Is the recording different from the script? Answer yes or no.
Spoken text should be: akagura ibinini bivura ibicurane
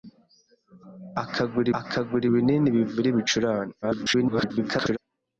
yes